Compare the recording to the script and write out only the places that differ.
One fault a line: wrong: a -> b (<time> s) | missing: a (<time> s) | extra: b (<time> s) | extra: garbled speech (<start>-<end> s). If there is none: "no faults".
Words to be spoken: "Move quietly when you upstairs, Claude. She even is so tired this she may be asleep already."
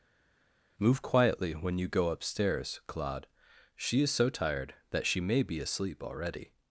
extra: go (1.9 s)
missing: even (4.0 s)
wrong: this -> that (4.9 s)